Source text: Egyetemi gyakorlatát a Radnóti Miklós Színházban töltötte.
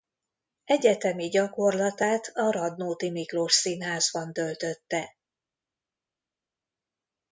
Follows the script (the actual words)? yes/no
yes